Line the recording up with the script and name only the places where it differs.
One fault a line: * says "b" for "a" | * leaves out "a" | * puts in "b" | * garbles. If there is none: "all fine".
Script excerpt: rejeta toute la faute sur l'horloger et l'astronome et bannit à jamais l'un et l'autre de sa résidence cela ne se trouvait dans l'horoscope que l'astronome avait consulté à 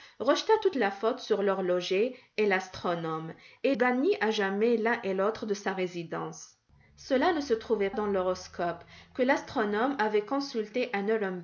all fine